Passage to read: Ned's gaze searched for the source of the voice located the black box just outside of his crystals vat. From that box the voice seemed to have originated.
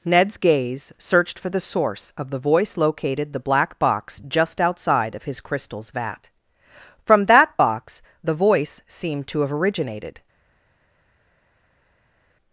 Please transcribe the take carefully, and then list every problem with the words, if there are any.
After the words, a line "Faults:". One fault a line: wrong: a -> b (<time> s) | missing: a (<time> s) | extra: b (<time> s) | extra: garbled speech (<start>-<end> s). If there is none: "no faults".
Ned's gaze searched for the source of the voice located the black box just outside of his crystals vat. From that box the voice seemed to have originated.
Faults:
no faults